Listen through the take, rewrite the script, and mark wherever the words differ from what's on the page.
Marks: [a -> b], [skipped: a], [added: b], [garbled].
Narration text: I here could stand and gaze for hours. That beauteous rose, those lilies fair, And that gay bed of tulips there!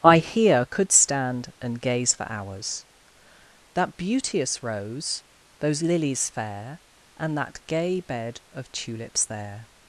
I here could stand and gaze for hours. That beauteous rose, those lilies fair, And that gay bed of tulips there!